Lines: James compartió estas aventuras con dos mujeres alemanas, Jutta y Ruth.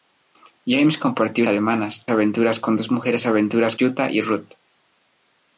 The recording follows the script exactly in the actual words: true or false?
false